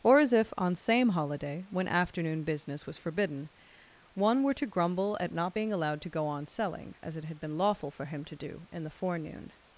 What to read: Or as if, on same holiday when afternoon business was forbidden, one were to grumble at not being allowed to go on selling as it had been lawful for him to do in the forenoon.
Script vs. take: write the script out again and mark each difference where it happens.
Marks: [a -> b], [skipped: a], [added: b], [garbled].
Or as if, on same holiday when afternoon business was forbidden, one were to grumble at not being allowed to go on selling as it had been lawful for him to do in the forenoon.